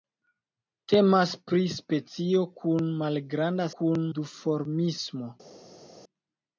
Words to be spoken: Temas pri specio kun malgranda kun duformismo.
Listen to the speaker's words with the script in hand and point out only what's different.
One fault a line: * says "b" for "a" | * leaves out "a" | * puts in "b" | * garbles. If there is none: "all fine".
all fine